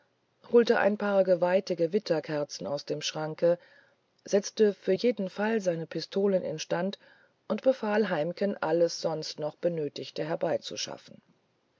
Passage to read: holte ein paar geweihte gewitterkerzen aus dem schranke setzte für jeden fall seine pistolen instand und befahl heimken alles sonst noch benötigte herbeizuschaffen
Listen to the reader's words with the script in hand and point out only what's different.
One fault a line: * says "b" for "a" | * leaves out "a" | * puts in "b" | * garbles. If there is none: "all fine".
all fine